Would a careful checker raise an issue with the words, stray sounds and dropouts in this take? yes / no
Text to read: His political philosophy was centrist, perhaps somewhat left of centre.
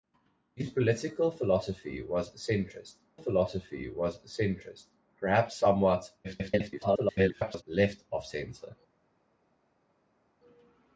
yes